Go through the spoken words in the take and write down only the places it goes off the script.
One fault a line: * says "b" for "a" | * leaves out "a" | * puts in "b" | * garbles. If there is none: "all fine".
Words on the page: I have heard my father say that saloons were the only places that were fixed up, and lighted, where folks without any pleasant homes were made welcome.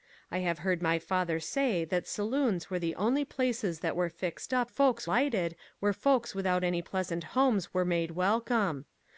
* says "folks" for "and"